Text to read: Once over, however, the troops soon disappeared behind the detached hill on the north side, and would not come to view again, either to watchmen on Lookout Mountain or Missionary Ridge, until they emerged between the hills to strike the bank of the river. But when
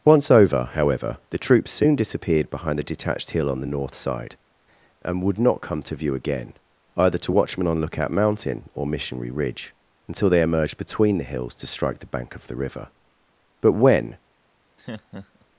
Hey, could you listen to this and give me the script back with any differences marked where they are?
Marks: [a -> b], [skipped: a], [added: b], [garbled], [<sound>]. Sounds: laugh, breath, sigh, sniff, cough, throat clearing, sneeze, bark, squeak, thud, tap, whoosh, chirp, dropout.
Once over, however, the troops soon disappeared behind the detached hill on the north side, and would not come to view again, either to watchmen on Lookout Mountain or Missionary Ridge, until they emerged between the hills to strike the bank of the river. But when [laugh]